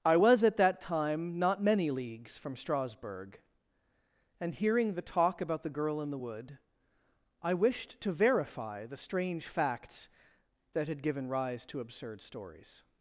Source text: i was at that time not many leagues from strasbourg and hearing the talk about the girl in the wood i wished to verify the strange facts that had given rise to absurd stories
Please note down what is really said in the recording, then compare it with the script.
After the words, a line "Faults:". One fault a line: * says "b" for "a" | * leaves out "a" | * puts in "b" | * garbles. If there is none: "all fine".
i was at that time not many leagues from strasbourg and hearing the talk about the girl in the wood i wished to verify the strange facts that had given rise to absurd stories
Faults:
all fine